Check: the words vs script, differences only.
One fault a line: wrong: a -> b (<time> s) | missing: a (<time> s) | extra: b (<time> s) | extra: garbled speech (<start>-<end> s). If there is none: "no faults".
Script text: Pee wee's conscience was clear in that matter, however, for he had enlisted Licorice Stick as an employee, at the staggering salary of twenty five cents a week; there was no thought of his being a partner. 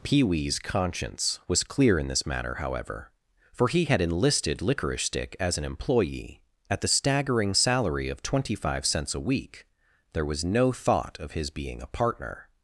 wrong: that -> this (2.1 s)